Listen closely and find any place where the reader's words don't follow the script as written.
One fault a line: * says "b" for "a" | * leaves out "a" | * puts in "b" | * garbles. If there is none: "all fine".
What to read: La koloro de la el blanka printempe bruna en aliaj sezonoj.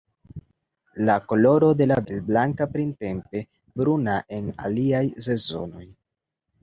all fine